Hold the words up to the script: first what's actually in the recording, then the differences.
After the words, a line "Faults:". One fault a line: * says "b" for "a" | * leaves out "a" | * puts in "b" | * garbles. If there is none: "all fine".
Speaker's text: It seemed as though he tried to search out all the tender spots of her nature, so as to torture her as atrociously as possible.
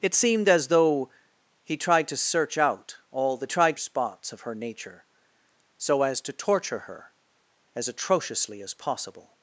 It seemed as though he tried to search out all the tried spots of her nature, so as to torture her as atrociously as possible.
Faults:
* says "tried" for "tender"